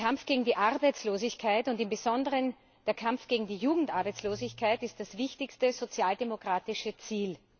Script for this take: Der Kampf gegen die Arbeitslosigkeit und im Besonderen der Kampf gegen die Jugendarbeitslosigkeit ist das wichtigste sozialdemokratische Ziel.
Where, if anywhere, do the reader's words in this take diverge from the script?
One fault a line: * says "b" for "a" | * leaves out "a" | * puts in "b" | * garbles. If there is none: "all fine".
all fine